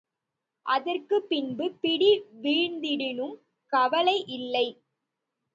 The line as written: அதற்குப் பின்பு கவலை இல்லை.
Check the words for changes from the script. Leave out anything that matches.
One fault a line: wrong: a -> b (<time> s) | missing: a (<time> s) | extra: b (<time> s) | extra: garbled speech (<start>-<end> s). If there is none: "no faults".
extra: பிடி வீழ்ந்திடினும் (1.8 s)